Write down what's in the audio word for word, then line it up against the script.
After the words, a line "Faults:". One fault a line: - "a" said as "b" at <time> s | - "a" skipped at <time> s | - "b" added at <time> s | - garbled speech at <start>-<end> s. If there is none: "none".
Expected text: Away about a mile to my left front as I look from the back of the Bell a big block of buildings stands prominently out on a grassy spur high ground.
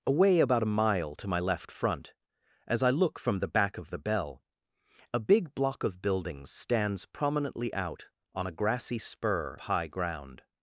Away about a mile to my left front as I look from the back of the Bell a big block of buildings stands prominently out on a grassy spur high ground.
Faults:
none